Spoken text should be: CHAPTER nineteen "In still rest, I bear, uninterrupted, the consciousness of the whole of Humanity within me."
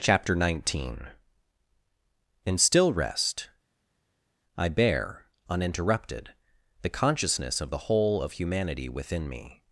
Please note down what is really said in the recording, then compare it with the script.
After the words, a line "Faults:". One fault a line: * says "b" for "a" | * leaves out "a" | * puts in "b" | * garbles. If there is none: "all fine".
CHAPTER nineteen "In still rest, I bear, uninterrupted, the consciousness of the whole of Humanity within me."
Faults:
all fine